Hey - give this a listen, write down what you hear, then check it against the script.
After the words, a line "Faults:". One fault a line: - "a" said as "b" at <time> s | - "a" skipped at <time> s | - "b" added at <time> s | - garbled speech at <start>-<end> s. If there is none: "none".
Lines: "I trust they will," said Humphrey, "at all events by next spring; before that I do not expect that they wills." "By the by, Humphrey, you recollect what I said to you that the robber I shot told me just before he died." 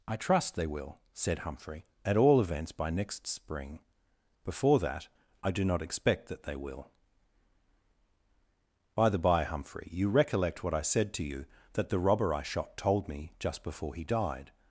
"I trust they will," said Humphrey, "at all events by next spring; before that I do not expect that they will." "By the by, Humphrey, you recollect what I said to you that the robber I shot told me just before he died."
Faults:
- "wills" said as "will" at 6.5 s